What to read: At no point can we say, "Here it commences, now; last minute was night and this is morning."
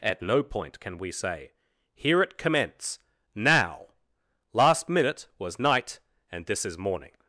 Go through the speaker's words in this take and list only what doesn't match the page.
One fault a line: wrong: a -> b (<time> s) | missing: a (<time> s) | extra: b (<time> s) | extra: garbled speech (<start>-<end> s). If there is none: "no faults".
wrong: commences -> commence (2.4 s)